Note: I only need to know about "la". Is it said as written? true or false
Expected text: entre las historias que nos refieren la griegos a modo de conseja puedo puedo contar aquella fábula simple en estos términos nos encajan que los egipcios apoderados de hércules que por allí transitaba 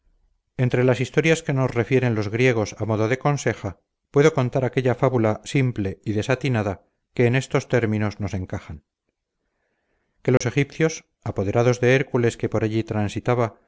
false